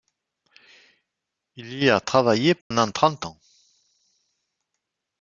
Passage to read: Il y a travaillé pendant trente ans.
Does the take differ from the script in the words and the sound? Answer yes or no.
yes